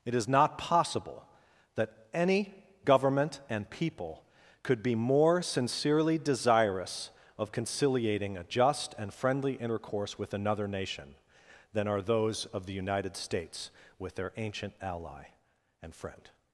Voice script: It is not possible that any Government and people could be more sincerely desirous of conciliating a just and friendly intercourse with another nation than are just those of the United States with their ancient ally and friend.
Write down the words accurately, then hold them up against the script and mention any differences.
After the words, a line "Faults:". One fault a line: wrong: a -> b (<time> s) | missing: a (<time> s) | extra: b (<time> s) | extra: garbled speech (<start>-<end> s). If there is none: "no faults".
It is not possible that any Government and people could be more sincerely desirous of conciliating a just and friendly intercourse with another nation than are those of the United States with their ancient ally and friend.
Faults:
missing: just (12.0 s)